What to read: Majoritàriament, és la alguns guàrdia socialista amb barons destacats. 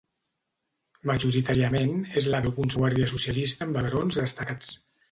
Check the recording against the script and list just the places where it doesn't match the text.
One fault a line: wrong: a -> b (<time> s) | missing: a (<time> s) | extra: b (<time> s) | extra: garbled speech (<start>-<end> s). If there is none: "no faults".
no faults